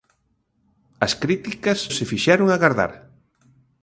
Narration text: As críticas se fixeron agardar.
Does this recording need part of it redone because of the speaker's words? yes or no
no